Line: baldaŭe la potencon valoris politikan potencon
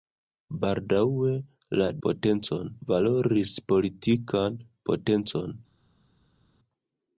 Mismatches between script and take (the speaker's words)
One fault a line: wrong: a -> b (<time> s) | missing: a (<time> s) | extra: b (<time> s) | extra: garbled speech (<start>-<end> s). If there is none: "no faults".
no faults